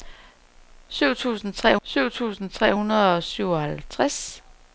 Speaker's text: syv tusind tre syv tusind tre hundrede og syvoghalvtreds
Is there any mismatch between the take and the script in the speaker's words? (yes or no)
no